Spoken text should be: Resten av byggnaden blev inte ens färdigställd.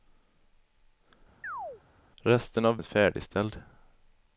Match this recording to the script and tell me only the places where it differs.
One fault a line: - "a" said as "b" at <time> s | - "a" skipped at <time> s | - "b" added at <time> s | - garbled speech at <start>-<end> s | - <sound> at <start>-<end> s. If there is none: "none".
- chirp at 1.4-1.8 s
- "byggnaden blev inte" skipped at 2.8 s